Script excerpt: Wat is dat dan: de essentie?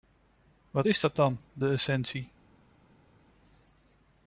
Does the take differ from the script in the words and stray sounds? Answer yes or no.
no